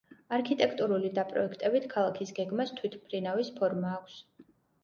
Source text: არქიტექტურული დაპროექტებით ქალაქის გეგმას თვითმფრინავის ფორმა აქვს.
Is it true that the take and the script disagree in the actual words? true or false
false